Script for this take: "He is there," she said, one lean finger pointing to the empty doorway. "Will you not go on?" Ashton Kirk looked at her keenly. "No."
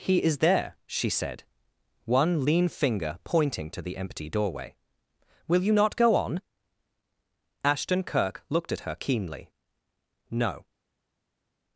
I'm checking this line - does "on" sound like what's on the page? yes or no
yes